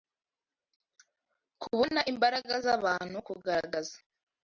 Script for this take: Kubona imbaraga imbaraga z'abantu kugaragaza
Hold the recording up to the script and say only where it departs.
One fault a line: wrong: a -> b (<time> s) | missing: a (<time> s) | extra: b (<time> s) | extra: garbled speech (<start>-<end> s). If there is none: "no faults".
missing: imbaraga (2.5 s)